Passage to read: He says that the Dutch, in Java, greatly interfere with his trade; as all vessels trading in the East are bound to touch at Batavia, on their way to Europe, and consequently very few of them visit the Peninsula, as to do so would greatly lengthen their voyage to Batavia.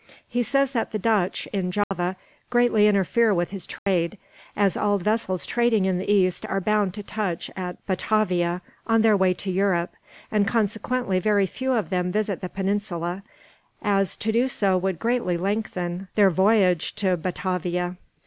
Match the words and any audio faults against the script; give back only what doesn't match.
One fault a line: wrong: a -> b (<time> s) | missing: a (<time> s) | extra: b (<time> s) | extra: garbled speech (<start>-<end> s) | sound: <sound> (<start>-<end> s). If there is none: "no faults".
sound: dropout (1.8-1.9 s)
sound: dropout (3.8-3.9 s)